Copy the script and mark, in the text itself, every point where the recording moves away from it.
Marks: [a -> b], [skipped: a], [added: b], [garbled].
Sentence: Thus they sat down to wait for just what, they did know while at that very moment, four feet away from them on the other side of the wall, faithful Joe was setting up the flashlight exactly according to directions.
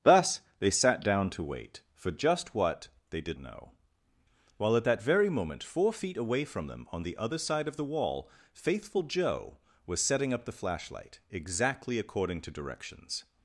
Thus they sat down to wait for just what, they did know while at that very moment, four feet away from them on the other side of the wall, faithful Joe was setting up the flashlight exactly according to directions.